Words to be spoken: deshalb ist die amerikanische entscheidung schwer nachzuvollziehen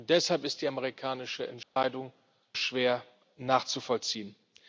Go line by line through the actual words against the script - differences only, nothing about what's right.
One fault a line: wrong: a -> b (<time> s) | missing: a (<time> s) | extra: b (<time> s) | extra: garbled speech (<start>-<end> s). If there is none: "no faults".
no faults